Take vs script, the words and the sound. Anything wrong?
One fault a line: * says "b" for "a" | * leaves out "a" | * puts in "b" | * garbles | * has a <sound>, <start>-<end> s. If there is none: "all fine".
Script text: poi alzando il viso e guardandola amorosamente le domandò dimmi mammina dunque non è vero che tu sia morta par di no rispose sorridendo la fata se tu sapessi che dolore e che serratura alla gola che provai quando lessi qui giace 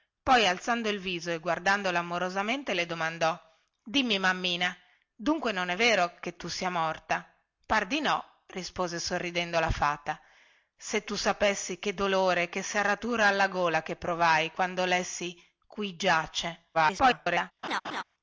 * garbles
* has a laugh, 17.6-18.0 s